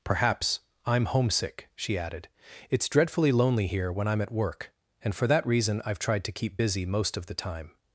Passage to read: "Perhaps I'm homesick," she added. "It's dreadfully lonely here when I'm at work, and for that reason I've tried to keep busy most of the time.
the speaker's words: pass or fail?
pass